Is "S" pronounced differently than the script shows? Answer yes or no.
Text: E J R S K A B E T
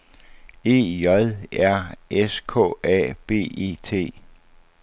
no